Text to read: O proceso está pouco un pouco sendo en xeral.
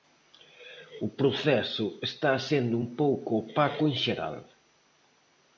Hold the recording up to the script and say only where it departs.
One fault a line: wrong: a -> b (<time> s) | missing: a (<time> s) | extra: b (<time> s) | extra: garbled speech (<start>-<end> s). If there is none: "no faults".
wrong: pouco -> sendo (2.5 s)
wrong: sendo -> opaco (3.4 s)